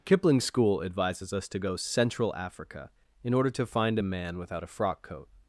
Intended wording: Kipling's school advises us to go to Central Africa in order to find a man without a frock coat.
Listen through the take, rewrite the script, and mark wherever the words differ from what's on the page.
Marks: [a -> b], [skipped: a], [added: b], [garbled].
Kipling's school advises us to go [skipped: to] Central Africa in order to find a man without a frock coat.